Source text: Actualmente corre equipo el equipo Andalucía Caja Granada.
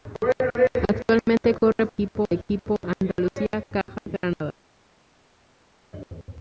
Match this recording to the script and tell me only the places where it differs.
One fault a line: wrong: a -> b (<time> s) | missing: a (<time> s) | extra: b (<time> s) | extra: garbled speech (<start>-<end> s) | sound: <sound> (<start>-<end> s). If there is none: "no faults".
no faults